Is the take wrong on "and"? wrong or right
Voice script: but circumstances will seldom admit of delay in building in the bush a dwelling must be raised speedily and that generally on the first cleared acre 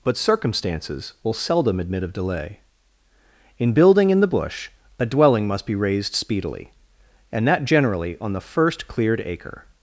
right